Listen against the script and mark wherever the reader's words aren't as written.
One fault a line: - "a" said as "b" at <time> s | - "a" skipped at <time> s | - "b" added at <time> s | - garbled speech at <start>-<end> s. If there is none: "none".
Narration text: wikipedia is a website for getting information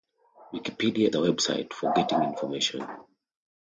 - "is" skipped at 1.1 s